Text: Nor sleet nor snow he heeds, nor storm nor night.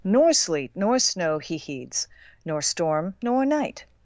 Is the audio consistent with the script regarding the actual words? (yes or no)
yes